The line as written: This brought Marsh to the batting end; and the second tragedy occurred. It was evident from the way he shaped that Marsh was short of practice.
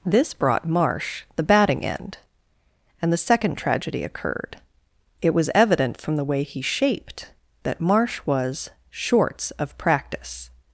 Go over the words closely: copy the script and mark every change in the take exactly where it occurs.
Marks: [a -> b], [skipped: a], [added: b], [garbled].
This brought Marsh [skipped: to] the batting end; and the second tragedy occurred. It was evident from the way he shaped that Marsh was [short -> shorts] of practice.